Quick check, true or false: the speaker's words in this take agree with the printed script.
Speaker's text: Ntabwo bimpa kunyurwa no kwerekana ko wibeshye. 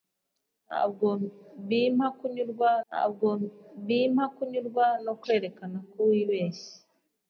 false